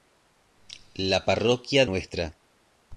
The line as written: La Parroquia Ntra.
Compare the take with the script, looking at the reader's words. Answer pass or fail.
pass